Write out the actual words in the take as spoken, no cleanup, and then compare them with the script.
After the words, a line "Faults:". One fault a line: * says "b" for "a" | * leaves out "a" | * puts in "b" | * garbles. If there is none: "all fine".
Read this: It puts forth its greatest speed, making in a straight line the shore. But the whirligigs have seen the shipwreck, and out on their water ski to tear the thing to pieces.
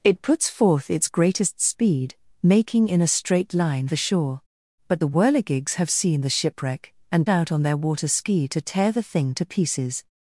It puts forth its greatest speed, making in a straight line the shore. But the whirligigs have seen the shipwreck, and out on their water ski to tear the thing to pieces.
Faults:
all fine